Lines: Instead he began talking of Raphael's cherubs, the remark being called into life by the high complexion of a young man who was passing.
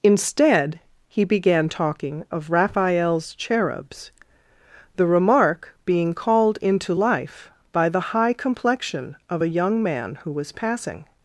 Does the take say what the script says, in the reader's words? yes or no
yes